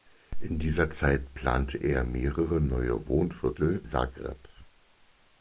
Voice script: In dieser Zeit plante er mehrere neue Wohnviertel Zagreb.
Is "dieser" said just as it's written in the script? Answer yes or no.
yes